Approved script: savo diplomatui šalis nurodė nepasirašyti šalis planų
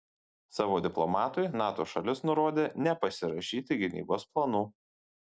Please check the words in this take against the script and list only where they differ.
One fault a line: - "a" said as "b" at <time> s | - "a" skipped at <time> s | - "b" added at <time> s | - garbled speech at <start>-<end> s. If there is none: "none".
- "nato" added at 1.6 s
- "šalis" said as "gynybos" at 3.8 s